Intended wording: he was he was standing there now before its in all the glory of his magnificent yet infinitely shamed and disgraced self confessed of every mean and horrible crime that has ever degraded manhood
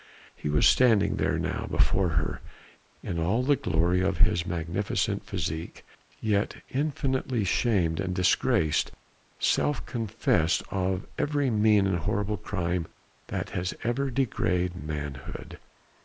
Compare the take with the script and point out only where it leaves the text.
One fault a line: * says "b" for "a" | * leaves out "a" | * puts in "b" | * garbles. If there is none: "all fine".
* leaves out "he was"
* says "her" for "its"
* puts in "physique"